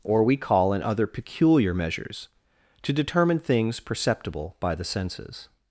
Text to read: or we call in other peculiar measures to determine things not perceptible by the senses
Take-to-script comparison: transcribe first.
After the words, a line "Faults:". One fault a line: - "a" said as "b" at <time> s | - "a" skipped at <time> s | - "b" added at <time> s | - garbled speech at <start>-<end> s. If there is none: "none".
or we call in other peculiar measures to determine things perceptible by the senses
Faults:
- "not" skipped at 3.8 s